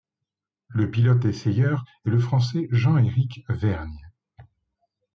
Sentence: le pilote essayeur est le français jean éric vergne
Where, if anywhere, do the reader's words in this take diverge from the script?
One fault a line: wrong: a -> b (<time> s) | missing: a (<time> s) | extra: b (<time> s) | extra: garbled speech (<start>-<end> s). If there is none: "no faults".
no faults